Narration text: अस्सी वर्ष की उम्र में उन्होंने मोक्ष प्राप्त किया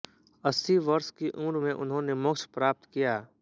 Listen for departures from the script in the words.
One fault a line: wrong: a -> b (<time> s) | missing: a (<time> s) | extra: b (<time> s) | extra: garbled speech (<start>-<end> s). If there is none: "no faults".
no faults